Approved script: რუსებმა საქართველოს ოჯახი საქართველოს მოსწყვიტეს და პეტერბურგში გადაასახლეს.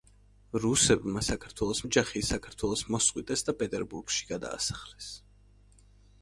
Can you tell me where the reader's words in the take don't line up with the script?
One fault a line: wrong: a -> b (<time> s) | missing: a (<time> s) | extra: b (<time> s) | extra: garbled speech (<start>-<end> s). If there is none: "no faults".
no faults